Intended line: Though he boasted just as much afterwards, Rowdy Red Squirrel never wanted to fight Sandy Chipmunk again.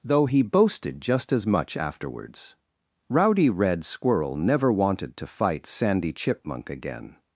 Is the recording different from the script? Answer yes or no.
no